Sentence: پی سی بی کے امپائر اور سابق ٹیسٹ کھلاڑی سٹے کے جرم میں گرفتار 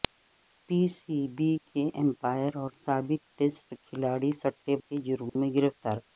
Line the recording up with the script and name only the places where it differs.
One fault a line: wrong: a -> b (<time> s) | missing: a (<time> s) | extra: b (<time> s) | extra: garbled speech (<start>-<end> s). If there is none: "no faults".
no faults